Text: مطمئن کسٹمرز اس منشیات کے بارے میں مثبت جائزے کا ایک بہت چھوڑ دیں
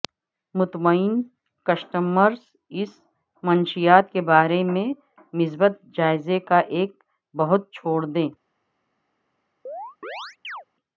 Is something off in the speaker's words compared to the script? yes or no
no